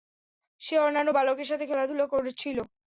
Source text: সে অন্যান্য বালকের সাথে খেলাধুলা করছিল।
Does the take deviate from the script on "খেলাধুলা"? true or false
false